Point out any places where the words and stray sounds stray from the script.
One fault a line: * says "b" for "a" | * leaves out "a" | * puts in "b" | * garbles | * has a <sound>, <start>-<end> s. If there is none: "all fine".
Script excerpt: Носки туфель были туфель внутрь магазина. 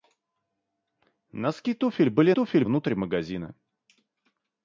all fine